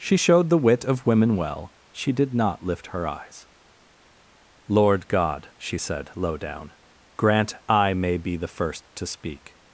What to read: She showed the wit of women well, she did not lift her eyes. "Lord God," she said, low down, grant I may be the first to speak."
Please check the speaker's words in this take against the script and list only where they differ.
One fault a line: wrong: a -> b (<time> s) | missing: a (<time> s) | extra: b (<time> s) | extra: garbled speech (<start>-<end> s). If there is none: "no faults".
no faults